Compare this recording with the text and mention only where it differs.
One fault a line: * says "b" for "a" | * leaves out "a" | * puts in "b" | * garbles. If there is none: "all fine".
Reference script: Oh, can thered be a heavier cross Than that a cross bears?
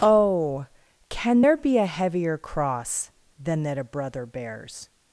* says "there" for "thered"
* says "brother" for "cross"